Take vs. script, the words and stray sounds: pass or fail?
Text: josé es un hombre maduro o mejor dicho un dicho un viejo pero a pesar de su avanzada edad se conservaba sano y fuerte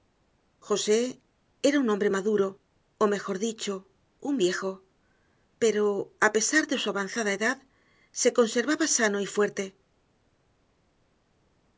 fail